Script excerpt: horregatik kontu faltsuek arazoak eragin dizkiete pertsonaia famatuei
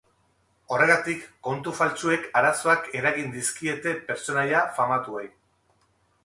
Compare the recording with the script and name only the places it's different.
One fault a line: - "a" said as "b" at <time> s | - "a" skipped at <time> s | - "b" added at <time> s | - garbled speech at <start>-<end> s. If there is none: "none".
none